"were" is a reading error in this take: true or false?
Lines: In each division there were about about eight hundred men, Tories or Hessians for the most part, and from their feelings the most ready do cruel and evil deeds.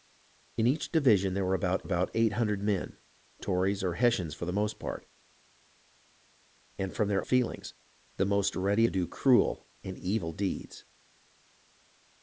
false